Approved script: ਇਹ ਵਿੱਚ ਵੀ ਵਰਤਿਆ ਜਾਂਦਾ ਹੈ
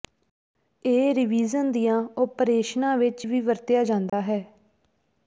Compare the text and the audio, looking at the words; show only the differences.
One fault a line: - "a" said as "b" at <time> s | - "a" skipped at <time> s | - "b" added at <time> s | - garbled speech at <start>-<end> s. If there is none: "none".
- "ਰੀਵਿਜ਼ਨ ਦੀਆਂ ਓਪਰੇਸ਼ਨਾਂ" added at 1.1 s